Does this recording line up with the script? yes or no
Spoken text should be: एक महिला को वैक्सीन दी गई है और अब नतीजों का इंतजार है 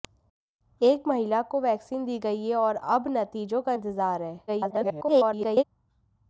no